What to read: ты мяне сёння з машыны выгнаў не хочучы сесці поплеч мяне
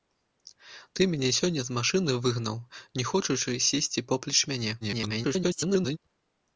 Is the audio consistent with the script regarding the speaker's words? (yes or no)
no